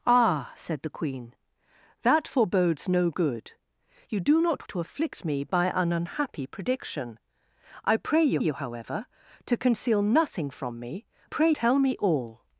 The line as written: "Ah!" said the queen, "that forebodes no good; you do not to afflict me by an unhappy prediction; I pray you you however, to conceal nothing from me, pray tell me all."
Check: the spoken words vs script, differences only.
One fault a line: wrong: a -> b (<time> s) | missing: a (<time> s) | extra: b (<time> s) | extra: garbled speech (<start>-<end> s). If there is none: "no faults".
no faults